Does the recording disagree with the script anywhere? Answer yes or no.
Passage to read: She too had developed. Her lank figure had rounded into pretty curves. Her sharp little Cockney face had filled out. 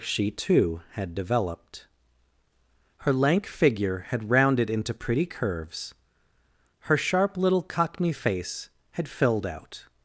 no